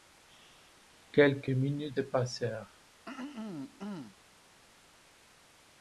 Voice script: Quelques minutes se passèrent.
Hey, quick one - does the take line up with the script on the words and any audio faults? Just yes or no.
no